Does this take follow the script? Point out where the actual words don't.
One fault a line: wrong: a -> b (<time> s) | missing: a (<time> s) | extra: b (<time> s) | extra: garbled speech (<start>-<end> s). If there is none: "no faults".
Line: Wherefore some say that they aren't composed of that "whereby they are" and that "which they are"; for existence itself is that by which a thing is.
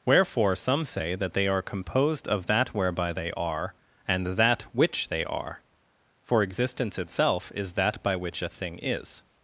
wrong: aren't -> are (1.5 s)